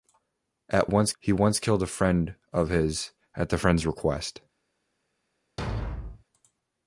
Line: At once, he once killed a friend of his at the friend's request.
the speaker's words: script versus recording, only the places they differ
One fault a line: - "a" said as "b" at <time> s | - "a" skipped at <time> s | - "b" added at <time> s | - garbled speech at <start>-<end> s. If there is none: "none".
none